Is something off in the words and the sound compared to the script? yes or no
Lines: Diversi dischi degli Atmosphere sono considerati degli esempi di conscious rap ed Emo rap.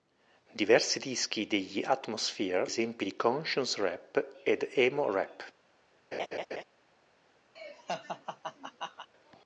yes